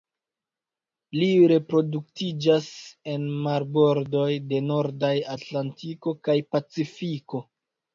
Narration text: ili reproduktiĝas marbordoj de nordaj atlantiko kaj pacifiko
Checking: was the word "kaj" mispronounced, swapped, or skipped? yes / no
no